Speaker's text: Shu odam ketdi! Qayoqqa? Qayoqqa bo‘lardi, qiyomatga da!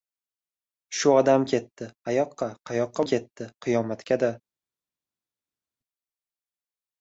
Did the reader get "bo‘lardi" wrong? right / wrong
wrong